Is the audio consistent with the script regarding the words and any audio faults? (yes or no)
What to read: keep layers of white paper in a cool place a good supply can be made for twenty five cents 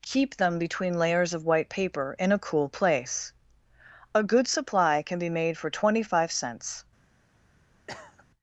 no